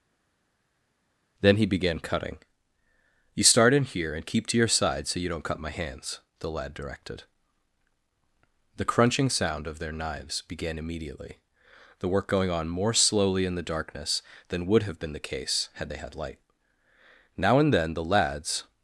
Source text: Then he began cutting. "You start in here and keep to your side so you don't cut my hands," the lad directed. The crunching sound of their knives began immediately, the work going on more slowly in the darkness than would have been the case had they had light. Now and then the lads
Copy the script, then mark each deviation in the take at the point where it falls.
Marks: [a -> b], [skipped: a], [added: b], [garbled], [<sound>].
Then he began cutting. "You start in here and keep to your side so you don't cut my hands," the lad directed. The crunching sound of their knives began immediately, the work going on more slowly in the darkness than would have been the case had they had light. Now and then the lads